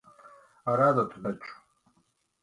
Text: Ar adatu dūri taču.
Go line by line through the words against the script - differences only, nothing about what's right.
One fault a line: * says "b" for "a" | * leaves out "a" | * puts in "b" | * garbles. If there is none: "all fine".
* leaves out "dūri"